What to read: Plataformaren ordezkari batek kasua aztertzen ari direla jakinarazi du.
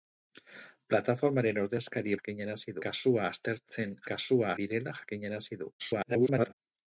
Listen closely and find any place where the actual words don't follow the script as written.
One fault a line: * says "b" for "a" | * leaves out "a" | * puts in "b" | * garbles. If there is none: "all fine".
* says "jakinarazi" for "batek"
* says "kasua" for "ari"
* garbles